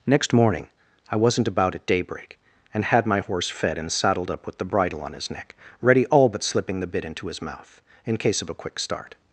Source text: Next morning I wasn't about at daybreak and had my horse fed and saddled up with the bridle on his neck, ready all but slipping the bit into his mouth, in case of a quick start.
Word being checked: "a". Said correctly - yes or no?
yes